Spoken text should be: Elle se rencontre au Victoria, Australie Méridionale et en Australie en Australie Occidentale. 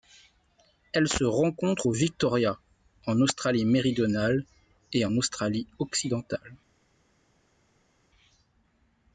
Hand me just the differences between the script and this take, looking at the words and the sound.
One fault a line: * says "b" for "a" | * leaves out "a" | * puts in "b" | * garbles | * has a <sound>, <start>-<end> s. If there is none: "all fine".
* puts in "en"
* leaves out "en Australie"